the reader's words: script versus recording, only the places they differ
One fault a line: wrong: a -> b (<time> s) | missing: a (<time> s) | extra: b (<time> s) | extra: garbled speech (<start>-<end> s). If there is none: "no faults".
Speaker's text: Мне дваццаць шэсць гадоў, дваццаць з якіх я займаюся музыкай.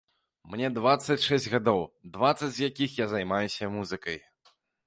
no faults